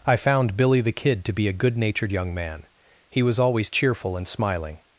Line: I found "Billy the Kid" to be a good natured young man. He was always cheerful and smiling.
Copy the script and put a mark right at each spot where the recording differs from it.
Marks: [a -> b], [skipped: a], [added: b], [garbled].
I found "Billy the Kid" to be a good natured young man. He was always cheerful and smiling.